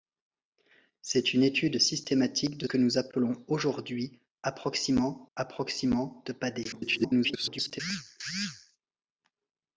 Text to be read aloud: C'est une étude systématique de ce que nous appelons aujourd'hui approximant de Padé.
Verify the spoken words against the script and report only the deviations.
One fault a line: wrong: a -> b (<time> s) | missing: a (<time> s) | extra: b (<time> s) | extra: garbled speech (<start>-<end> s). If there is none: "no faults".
missing: ce (2.7 s)
extra: approximant (5.4 s)
extra: garbled speech (6.7-7.8 s)